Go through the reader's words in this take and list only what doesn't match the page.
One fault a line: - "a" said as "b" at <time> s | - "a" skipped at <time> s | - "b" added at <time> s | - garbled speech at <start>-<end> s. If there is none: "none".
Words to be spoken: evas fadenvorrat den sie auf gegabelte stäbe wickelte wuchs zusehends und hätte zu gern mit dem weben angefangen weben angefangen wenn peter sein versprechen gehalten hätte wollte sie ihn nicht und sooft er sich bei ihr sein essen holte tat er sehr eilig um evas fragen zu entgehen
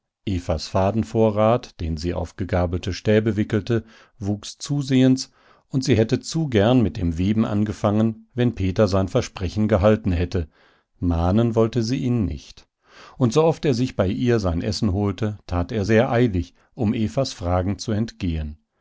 - "sie" added at 5.8 s
- "weben angefangen" skipped at 8.3 s
- "mahnen" added at 11.0 s